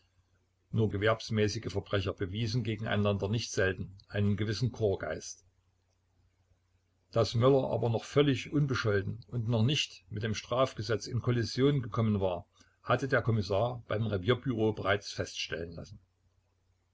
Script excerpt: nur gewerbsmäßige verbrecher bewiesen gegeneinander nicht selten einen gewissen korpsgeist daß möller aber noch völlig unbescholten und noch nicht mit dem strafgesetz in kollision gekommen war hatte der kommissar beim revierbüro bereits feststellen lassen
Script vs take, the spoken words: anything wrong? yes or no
no